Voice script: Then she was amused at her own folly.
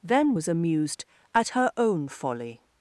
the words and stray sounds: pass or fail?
fail